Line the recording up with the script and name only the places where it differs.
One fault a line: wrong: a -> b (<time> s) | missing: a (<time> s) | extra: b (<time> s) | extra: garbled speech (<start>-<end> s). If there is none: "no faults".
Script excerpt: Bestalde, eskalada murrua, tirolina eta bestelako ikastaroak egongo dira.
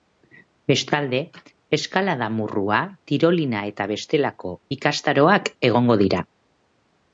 no faults